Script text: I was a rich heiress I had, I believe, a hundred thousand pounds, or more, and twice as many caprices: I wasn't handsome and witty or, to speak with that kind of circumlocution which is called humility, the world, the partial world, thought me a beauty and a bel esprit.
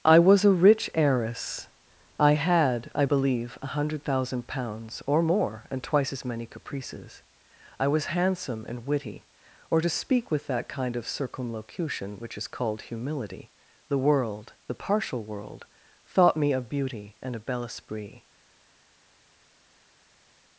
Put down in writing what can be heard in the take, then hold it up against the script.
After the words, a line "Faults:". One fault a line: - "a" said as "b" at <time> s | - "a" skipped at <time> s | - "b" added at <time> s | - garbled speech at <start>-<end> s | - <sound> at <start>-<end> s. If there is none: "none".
I was a rich heiress I had, I believe, a hundred thousand pounds, or more, and twice as many caprices: I was handsome and witty or, to speak with that kind of circumlocution which is called humility, the world, the partial world, thought me a beauty and a bel esprit.
Faults:
- "wasn't" said as "was" at 7.9 s